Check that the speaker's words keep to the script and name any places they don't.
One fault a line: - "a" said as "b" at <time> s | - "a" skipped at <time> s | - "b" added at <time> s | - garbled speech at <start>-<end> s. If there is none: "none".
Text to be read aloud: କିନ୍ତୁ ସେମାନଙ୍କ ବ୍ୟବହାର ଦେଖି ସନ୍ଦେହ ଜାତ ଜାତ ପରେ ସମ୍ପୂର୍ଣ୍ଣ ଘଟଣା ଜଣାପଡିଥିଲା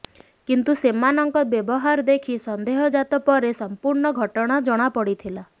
- "ଜାତ" skipped at 3.2 s